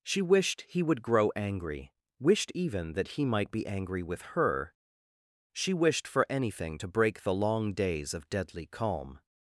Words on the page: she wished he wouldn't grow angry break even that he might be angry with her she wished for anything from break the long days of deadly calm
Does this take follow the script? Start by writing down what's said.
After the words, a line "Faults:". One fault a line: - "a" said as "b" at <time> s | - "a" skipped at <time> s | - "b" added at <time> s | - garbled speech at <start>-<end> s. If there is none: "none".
she wished he would grow angry wished even that he might be angry with her she wished for anything to break the long days of deadly calm
Faults:
- "wouldn't" said as "would" at 0.8 s
- "break" said as "wished" at 2.2 s
- "from" said as "to" at 6.8 s